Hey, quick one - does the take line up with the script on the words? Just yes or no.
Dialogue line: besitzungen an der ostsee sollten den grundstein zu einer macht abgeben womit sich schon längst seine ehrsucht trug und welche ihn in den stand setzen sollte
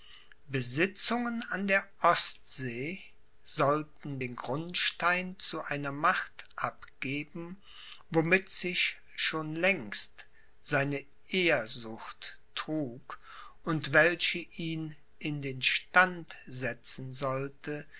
yes